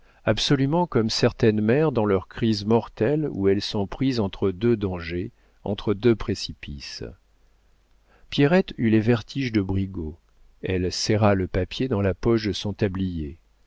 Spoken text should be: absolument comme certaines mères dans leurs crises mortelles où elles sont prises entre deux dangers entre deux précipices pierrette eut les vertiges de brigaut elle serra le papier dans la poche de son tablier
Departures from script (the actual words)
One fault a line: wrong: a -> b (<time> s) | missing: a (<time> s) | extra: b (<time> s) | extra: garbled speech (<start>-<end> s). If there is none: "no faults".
no faults